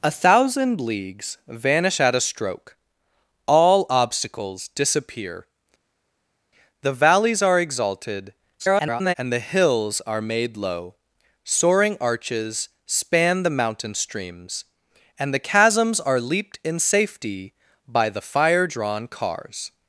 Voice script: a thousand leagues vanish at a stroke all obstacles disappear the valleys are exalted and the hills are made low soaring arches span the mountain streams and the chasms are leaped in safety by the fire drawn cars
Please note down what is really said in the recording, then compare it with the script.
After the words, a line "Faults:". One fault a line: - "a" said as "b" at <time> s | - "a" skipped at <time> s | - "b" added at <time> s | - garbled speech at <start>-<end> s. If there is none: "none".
a thousand leagues vanish at a stroke all obstacles disappear the valleys are exalted [garbled] and the hills are made low soaring arches span the mountain streams and the chasms are leaped in safety by the fire drawn cars
Faults:
- garbled speech at 8.6-9.1 s